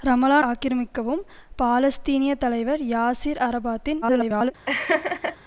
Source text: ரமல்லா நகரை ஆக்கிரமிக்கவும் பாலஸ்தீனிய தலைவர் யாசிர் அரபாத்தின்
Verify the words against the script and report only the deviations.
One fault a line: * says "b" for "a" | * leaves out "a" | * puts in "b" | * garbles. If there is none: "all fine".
* leaves out "நகரை"
* garbles